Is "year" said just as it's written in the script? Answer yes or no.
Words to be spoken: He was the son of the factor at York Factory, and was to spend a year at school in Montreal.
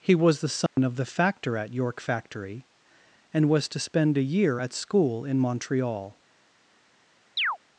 yes